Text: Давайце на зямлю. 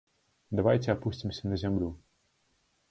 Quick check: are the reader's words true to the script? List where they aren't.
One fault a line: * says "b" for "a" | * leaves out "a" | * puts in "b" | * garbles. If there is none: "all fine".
* puts in "апусцімся"